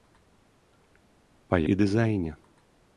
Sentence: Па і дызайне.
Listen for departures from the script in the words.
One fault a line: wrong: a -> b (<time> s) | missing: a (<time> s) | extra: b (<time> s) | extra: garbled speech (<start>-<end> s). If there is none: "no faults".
no faults